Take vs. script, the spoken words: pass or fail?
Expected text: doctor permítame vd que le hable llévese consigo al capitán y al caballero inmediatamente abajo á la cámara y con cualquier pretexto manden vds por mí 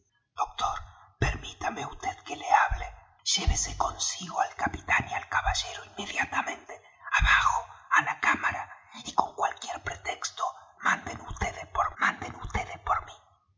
fail